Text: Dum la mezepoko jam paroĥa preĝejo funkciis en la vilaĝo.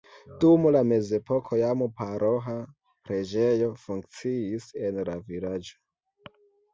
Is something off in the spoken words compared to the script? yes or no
no